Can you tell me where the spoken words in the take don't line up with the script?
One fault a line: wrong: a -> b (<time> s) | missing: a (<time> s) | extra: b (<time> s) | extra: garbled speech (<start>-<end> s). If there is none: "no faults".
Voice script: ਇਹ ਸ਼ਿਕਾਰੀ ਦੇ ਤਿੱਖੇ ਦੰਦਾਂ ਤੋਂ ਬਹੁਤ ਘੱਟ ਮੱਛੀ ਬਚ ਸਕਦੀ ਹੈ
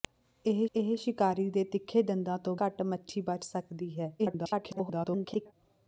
extra: ਇਹ (0.7 s)
missing: ਬਹੁਤ (2.6 s)
extra: garbled speech (4.2-5.5 s)